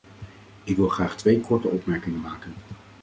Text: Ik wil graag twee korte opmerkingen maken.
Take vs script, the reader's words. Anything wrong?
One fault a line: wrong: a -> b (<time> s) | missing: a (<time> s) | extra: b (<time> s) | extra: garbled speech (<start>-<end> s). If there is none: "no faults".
no faults